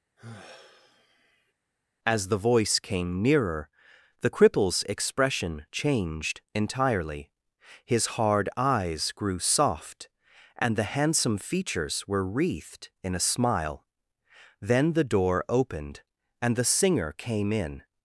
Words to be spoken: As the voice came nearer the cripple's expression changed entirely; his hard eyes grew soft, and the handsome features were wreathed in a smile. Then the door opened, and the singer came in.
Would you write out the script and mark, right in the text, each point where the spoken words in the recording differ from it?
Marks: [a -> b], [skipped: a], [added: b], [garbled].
As the voice came nearer the cripple's expression changed entirely; his hard eyes grew soft, and the handsome features were wreathed in a smile. Then the door opened, and the singer came in.